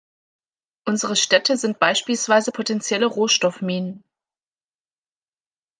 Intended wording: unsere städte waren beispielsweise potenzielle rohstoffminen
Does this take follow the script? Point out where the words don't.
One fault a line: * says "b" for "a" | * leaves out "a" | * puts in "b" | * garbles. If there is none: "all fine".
* says "sind" for "waren"